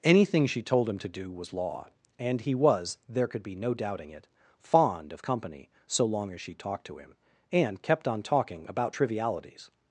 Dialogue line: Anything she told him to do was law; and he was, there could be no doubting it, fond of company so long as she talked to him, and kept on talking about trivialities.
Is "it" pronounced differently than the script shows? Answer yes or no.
no